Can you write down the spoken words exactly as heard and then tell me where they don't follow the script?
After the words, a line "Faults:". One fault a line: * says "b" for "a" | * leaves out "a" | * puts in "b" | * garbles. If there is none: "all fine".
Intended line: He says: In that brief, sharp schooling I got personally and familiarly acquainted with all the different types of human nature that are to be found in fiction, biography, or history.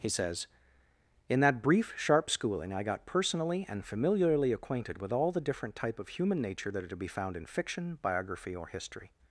He says: In that brief, sharp schooling I got personally and familiarly acquainted with all the different type of human nature that are to be found in fiction, biography, or history.
Faults:
* says "type" for "types"